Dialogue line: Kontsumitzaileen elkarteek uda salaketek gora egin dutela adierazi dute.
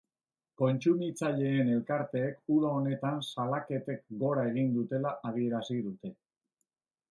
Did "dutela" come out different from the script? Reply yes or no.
no